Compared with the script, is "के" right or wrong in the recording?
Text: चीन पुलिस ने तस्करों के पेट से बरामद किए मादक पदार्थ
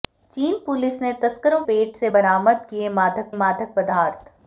wrong